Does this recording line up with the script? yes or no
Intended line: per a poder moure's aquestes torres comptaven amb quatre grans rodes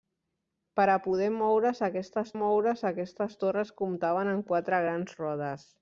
no